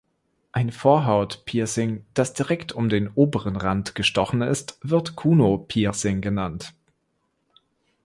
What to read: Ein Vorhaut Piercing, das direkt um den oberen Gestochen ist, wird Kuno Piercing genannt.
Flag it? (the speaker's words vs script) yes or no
yes